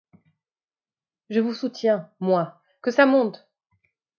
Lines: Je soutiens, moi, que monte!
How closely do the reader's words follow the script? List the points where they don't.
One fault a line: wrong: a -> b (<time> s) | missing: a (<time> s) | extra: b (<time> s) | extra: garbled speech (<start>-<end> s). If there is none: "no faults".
extra: vous (1.4 s)
extra: ça (2.9 s)